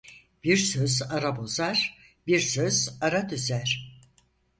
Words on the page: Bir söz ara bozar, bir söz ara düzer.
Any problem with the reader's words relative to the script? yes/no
no